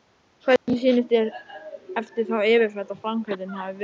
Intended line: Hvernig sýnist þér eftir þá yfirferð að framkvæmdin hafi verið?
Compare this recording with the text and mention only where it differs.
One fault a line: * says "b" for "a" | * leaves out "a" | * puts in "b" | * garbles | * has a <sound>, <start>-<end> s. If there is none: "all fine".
* has a dropout, 0.6-0.7 s